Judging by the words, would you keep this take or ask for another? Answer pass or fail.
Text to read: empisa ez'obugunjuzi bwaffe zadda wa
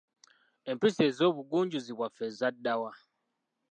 pass